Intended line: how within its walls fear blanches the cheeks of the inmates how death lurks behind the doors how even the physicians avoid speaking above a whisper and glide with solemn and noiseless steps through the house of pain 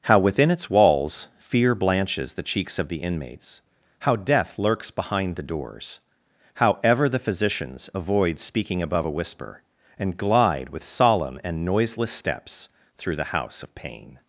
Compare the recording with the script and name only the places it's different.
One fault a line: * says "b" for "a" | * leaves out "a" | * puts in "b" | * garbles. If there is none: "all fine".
* says "ever" for "even"